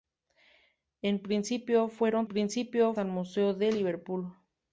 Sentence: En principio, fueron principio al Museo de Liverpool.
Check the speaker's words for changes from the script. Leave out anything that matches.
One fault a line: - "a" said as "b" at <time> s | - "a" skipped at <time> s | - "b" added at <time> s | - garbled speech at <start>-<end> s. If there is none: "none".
none